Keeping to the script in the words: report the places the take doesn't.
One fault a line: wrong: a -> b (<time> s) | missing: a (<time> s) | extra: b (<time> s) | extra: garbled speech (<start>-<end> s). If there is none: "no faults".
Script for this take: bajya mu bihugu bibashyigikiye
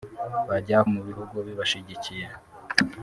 no faults